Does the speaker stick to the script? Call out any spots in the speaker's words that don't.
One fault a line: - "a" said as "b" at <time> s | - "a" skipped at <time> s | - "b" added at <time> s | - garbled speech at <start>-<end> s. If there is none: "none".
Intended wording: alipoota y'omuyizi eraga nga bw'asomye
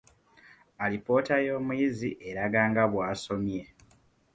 none